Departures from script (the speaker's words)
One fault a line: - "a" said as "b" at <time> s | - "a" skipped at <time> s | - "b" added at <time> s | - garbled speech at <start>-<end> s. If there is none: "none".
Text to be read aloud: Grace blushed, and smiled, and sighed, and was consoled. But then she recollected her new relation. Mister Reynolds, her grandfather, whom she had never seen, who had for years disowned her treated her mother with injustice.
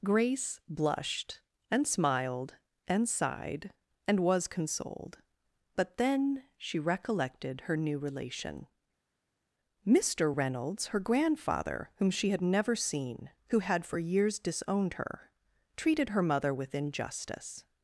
none